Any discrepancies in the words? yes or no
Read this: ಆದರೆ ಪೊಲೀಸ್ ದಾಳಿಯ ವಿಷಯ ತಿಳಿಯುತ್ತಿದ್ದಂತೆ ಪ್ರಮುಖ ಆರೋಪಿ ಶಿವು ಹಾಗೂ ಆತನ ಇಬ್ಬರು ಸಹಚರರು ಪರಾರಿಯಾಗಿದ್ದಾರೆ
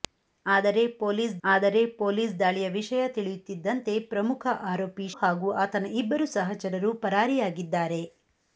yes